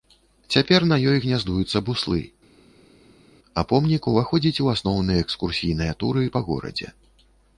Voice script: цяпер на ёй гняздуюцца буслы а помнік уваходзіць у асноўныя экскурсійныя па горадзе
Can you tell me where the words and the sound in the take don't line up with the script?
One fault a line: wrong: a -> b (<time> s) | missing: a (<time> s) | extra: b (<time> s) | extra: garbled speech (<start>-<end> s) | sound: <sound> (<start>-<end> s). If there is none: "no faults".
extra: туры (6.0 s)